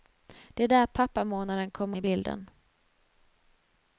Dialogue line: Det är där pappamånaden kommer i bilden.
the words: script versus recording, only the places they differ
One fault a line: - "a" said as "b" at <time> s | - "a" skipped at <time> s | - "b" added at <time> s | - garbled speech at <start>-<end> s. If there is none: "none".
none